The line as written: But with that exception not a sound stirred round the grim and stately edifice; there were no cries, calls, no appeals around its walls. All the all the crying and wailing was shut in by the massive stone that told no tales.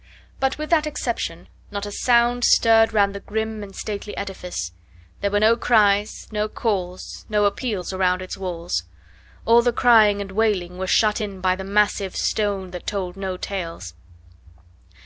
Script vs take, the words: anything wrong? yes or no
yes